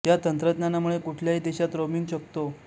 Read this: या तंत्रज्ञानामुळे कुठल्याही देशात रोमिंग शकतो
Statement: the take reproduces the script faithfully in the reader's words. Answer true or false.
true